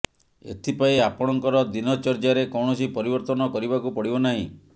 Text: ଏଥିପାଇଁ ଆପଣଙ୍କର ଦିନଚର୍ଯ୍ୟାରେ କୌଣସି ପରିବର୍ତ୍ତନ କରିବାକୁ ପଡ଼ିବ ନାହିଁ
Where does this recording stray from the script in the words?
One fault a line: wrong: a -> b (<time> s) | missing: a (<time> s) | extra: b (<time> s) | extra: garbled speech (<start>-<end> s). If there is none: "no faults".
no faults